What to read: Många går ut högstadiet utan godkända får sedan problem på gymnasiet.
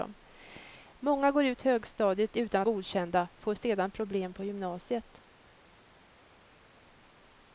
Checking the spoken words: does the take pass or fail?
pass